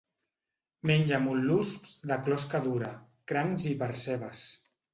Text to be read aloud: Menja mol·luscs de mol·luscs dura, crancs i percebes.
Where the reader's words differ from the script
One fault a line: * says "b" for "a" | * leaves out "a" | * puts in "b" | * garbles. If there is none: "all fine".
* says "closca" for "mol·luscs"